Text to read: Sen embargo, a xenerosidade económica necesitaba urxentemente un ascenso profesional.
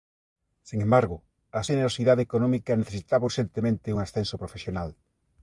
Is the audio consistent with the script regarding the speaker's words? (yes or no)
yes